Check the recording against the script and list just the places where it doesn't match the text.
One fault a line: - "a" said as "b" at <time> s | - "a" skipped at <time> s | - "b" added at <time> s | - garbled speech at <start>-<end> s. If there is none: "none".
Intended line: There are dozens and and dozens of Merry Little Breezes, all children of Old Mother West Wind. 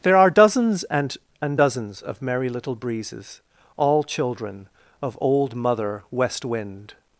none